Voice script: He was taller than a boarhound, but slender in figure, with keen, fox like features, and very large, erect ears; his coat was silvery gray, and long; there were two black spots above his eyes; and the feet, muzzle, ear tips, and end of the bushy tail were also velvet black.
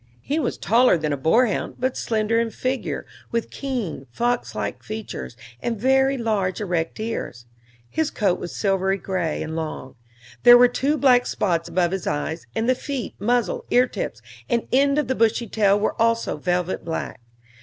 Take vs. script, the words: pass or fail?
pass